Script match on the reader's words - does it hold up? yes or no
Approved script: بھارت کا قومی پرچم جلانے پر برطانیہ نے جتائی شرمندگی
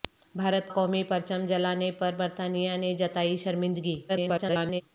no